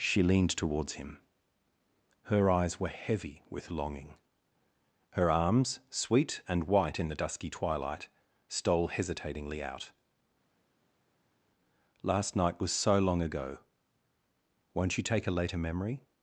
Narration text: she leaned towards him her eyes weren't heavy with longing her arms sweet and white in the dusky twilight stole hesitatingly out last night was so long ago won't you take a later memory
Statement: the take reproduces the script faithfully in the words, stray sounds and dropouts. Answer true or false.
false